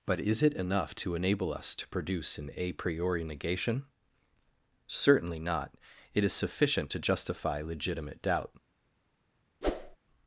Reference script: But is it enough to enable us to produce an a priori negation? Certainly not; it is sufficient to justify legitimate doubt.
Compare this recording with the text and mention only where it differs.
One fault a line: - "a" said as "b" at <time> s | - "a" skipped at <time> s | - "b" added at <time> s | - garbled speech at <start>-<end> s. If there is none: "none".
none